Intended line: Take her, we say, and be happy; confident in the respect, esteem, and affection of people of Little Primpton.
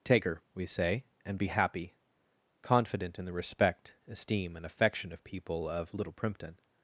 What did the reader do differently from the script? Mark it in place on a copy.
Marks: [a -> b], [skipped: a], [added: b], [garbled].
Take her, we say, and be happy; confident in the respect, esteem, and affection of people of Little Primpton.